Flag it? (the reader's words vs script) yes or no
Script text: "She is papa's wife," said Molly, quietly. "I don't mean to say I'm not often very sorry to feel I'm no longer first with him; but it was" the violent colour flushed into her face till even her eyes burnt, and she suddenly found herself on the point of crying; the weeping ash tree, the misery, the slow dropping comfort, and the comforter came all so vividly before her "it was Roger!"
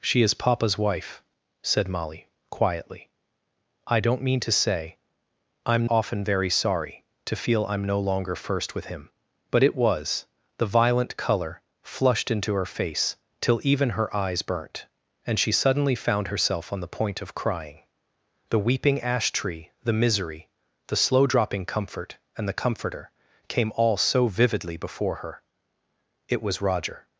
yes